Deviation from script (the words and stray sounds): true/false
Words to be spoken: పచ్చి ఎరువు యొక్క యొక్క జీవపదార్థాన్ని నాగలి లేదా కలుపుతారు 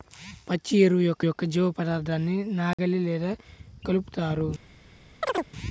true